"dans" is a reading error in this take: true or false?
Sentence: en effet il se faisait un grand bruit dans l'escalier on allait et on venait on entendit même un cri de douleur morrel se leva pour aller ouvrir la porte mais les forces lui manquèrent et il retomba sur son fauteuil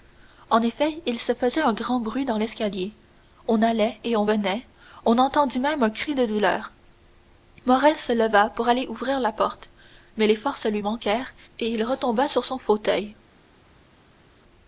false